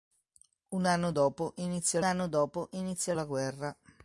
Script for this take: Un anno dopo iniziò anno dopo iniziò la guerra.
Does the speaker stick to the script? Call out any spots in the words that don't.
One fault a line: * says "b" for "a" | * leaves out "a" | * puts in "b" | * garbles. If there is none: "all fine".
all fine